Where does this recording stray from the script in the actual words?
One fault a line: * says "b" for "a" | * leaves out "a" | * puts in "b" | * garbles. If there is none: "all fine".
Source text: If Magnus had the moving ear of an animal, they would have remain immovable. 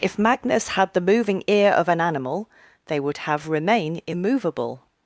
all fine